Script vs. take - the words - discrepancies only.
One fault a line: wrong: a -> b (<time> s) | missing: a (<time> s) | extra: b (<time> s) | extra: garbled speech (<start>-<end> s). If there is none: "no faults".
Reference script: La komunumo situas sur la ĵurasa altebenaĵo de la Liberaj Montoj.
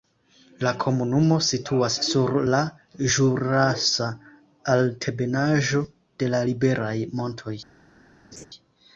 no faults